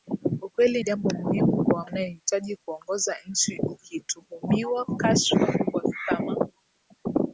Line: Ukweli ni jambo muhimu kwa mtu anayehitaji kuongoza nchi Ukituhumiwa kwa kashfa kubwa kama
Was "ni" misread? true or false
true